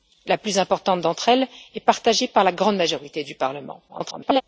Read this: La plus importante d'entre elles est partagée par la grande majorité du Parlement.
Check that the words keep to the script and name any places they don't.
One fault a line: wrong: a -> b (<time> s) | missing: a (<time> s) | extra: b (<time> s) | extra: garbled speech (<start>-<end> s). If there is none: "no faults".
extra: garbled speech (3.9-4.4 s)